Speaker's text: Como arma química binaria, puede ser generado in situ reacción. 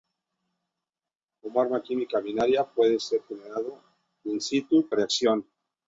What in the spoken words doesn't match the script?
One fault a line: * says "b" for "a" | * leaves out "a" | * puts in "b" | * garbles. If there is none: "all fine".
all fine